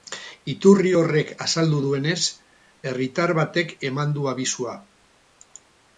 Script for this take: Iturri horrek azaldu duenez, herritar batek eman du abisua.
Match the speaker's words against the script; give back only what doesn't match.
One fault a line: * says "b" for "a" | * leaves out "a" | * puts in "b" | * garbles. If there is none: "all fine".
all fine